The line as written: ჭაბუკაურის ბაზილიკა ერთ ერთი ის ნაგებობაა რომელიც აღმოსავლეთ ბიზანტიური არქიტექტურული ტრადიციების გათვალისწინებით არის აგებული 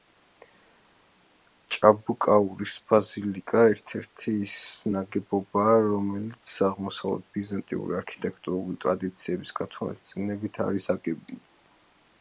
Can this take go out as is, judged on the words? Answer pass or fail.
pass